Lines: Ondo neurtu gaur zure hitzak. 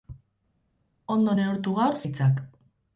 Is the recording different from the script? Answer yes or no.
yes